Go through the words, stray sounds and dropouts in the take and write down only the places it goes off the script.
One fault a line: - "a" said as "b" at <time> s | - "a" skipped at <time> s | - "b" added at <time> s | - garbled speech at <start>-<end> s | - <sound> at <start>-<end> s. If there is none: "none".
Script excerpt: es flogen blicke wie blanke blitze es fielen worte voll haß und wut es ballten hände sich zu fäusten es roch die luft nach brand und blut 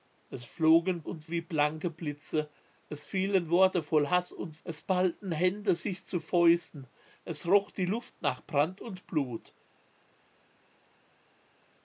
- "blicke" said as "und" at 1.0 s
- "wut" skipped at 4.6 s